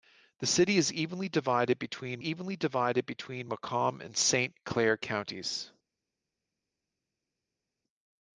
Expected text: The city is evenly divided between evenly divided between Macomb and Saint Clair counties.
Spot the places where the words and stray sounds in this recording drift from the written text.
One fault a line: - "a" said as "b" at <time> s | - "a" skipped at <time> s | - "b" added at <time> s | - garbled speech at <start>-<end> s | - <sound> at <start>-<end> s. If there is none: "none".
none